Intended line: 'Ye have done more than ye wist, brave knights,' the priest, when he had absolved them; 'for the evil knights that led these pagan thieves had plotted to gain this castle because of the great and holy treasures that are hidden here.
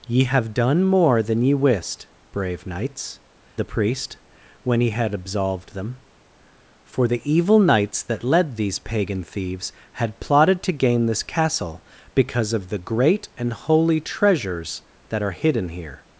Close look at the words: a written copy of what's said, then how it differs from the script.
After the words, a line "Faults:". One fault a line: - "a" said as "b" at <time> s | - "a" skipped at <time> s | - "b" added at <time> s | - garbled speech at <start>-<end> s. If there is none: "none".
'Ye have done more than ye wist, brave knights,' the priest, when he had absolved them; 'for the evil knights that led these pagan thieves had plotted to gain this castle because of the great and holy treasures that are hidden here.
Faults:
none